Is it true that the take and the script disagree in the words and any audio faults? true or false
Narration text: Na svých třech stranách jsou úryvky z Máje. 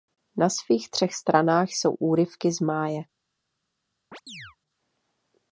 true